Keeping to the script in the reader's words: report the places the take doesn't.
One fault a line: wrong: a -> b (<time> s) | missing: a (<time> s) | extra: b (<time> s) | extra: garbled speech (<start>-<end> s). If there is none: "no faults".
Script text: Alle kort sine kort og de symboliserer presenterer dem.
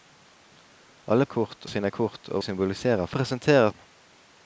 no faults